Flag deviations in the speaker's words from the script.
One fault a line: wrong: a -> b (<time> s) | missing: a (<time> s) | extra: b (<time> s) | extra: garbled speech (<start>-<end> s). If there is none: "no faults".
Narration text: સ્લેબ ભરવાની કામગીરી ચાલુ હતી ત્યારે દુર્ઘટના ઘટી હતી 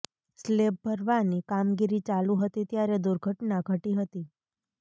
no faults